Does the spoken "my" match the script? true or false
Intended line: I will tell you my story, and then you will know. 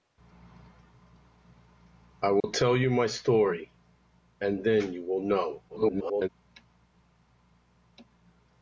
true